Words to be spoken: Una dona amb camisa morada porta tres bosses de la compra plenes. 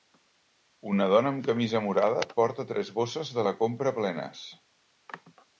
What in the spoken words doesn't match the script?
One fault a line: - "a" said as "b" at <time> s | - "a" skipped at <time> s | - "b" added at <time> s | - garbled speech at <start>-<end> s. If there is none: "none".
none